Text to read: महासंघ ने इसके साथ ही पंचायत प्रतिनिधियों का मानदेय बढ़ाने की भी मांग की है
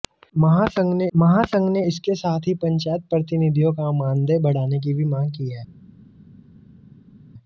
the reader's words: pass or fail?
fail